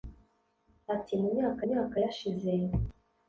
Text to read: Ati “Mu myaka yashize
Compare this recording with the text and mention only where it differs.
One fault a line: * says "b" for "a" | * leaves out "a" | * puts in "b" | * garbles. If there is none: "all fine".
* puts in "myaka"